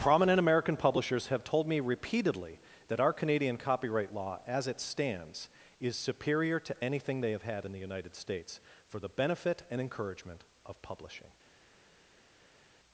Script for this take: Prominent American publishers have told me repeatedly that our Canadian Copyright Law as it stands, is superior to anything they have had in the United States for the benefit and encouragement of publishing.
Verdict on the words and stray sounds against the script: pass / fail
pass